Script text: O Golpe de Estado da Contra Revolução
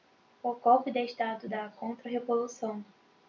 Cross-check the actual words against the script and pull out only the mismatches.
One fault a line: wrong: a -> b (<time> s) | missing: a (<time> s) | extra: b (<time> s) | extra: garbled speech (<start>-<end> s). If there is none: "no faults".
no faults